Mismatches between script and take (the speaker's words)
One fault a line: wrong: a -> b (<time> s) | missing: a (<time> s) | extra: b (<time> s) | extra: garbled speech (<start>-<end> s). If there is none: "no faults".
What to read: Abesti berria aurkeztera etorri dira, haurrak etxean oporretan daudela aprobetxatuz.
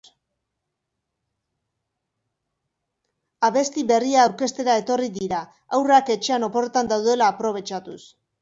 no faults